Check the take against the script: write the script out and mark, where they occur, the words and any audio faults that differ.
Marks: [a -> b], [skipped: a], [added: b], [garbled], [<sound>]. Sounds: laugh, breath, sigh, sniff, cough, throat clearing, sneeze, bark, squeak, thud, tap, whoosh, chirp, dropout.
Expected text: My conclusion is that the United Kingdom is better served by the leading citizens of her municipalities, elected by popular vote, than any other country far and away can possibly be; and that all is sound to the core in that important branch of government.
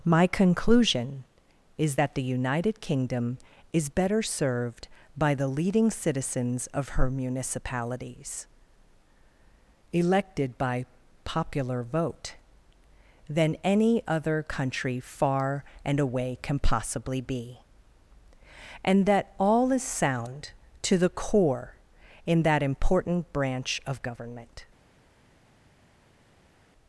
My conclusion is that the United Kingdom is better served by the leading citizens of her municipalities, elected by popular vote, than any other country far and away can possibly be; and that all is sound to the core in that important branch of government.